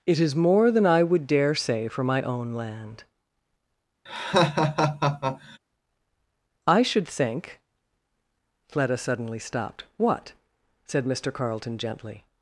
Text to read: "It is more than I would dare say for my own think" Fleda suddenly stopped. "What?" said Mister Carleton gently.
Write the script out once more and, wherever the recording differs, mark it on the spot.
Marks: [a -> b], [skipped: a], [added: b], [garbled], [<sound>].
"It is more than I would dare say for my own [added: land I should] [laugh] think" Fleda suddenly stopped. "What?" said Mister Carleton gently.